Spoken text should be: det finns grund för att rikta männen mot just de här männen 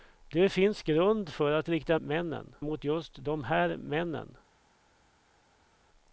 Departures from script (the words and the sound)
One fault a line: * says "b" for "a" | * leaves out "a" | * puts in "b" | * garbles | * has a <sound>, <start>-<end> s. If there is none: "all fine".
all fine